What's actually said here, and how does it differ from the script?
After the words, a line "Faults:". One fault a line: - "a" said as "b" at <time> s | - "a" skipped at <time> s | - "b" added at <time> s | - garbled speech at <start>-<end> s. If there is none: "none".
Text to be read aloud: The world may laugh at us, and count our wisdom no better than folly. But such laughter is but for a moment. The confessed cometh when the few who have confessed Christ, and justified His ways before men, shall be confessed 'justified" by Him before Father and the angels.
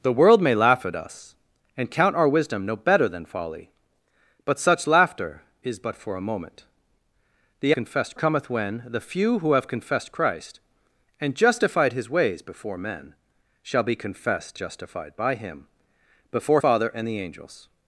The world may laugh at us, and count our wisdom no better than folly. But such laughter is but for a moment. The confessed cometh when the few who have confessed Christ, and justified His ways before men, shall be confessed 'justified" by Him before Father and the angels.
Faults:
none